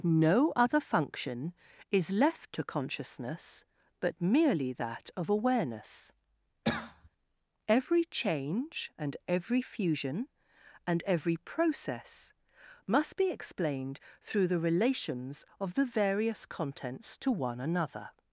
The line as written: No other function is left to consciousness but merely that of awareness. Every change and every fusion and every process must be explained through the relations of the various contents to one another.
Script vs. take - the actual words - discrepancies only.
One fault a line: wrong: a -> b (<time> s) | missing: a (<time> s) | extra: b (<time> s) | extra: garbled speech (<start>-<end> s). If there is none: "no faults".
no faults